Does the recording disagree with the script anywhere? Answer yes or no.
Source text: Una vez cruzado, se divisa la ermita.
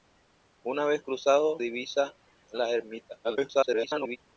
yes